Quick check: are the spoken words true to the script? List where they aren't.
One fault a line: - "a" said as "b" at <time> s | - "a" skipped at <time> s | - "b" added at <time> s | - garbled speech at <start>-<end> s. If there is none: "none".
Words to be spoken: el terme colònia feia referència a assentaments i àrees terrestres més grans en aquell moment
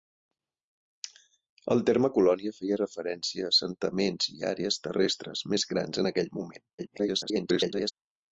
- garbled speech at 6.8-7.9 s